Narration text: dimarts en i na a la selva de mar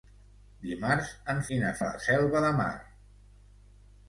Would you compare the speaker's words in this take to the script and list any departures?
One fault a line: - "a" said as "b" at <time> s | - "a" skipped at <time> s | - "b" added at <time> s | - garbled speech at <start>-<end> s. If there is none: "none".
none